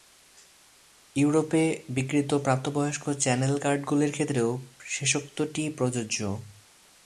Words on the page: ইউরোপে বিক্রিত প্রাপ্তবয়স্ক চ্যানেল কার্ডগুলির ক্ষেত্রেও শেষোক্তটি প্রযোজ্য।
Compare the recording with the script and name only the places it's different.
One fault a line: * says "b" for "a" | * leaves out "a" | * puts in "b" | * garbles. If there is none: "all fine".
all fine